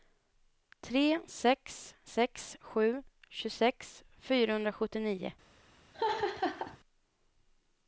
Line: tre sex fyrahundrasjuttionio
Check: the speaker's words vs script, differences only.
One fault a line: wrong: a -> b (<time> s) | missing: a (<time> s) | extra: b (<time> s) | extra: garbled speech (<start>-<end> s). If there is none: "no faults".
extra: sex sju tjugosex (2.1 s)